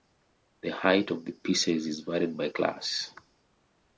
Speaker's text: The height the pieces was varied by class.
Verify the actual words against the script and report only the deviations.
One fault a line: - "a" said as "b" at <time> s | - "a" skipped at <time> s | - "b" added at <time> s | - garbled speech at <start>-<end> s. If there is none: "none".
- "of" added at 1.1 s
- "was" said as "is" at 1.9 s